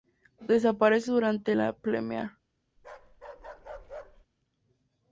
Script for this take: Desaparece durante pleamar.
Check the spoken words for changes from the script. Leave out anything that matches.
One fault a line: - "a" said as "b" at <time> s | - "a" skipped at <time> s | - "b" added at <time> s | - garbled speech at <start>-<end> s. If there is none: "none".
- "la" added at 1.5 s